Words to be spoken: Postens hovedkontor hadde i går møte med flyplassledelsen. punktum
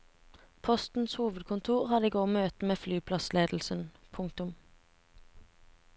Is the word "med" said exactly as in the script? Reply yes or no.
yes